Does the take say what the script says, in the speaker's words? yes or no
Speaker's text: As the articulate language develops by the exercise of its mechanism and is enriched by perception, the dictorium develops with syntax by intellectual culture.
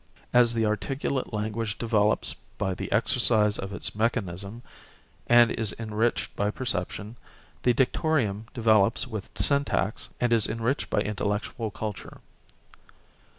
no